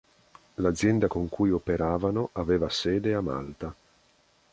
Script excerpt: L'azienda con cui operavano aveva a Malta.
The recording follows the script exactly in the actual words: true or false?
false